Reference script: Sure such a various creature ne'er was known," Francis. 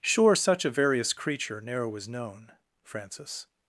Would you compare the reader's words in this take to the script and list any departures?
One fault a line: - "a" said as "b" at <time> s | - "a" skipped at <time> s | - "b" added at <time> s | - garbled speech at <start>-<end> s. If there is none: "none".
none